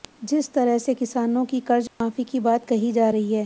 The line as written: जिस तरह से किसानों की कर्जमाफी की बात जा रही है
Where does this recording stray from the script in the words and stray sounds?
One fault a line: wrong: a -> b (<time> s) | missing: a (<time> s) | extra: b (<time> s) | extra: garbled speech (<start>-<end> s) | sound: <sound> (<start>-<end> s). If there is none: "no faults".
sound: dropout (1.9-2.0 s)
extra: कही (2.7 s)